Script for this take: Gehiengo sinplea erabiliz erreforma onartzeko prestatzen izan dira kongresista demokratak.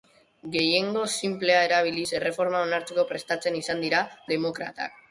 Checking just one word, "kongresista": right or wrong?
wrong